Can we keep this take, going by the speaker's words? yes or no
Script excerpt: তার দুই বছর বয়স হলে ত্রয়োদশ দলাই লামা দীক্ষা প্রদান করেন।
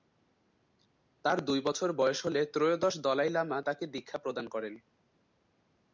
no